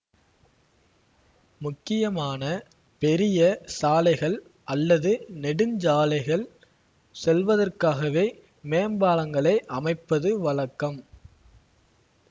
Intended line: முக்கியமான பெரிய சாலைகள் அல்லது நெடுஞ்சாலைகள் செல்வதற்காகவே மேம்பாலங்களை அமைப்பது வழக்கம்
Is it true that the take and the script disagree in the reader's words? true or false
false